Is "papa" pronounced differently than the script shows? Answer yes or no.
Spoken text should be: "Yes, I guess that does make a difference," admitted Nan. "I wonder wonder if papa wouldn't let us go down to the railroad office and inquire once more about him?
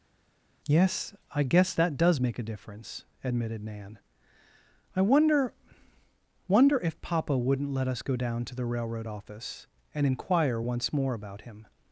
no